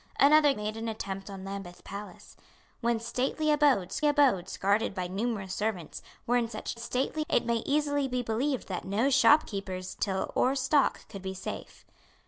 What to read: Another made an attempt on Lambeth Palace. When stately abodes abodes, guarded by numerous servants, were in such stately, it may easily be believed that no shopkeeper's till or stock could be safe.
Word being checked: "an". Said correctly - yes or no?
yes